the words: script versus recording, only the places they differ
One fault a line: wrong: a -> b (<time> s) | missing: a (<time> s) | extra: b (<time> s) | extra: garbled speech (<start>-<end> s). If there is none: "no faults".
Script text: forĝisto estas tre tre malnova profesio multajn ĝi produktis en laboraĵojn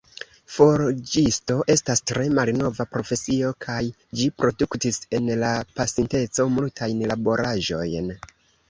missing: tre (2.3 s)
wrong: multajn -> kaj (3.7 s)
extra: la pasinteco multajn (5.5 s)